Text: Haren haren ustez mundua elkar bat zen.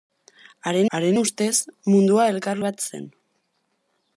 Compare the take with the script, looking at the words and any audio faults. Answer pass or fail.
pass